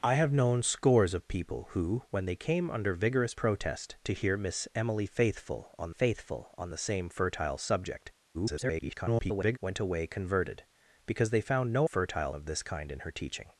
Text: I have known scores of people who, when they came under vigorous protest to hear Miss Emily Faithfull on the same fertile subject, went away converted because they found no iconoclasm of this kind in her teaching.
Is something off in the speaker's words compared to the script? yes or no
yes